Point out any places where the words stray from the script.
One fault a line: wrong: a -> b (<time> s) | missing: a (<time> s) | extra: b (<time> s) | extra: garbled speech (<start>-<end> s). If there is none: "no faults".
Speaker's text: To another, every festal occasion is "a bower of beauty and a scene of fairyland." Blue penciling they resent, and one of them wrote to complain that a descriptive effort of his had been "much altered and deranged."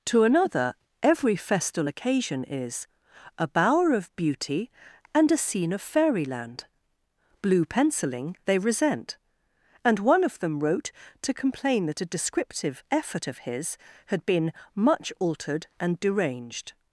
no faults